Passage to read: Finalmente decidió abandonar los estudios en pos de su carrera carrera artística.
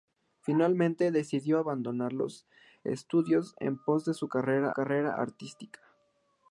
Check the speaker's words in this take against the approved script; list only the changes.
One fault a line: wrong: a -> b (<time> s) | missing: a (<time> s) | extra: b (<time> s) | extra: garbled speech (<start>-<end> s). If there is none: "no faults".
no faults